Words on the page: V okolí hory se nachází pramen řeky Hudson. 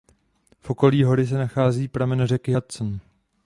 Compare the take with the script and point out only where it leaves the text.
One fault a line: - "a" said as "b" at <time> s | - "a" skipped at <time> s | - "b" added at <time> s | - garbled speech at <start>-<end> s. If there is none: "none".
none